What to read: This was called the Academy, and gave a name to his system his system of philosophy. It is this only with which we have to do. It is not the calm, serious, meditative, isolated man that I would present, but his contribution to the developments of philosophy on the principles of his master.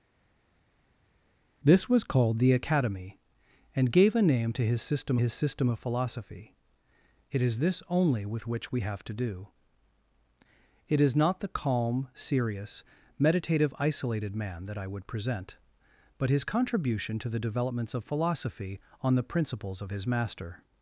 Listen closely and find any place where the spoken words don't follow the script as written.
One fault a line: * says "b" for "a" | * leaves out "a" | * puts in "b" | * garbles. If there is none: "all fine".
all fine